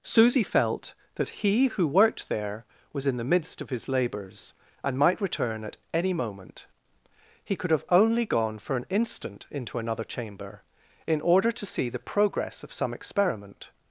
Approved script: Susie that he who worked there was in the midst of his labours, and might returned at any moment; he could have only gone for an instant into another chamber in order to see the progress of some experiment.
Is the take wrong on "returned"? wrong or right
wrong